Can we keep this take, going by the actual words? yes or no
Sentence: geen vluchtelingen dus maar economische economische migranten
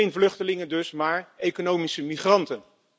no